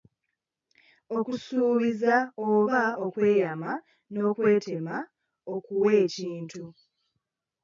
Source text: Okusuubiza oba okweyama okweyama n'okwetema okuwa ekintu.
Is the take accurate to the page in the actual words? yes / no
no